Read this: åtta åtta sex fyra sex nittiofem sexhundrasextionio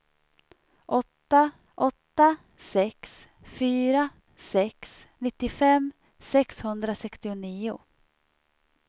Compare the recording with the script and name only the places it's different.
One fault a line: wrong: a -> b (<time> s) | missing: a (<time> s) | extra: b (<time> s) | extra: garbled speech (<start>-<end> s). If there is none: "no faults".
no faults